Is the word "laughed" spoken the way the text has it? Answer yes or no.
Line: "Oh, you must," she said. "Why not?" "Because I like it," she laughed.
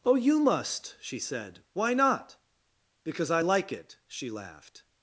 yes